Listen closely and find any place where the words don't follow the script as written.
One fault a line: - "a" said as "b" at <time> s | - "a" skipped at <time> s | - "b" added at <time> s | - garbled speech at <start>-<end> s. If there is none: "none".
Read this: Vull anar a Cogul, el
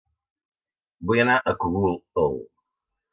none